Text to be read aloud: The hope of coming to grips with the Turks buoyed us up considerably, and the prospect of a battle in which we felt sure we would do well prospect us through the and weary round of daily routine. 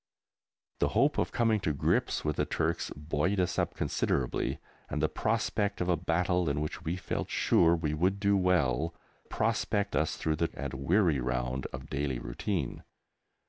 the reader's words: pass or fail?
pass